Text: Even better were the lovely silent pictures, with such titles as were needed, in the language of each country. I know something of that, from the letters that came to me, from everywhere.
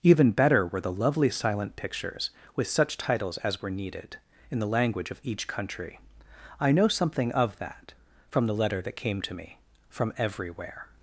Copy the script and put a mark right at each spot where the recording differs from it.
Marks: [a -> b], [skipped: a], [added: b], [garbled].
Even better were the lovely silent pictures, with such titles as were needed, in the language of each country. I know something of that, from the [letters -> letter] that came to me, from everywhere.